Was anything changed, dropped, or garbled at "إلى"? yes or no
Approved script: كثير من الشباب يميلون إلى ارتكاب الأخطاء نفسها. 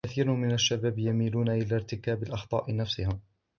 no